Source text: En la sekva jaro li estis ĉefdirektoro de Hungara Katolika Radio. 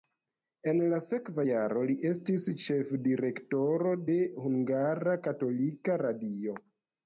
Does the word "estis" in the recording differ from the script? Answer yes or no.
no